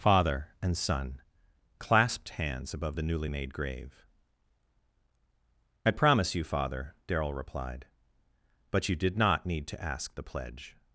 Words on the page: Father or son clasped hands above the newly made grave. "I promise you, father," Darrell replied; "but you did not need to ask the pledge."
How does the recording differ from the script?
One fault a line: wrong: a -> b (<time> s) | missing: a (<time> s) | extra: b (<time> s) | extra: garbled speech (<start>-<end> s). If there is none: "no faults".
wrong: or -> and (0.6 s)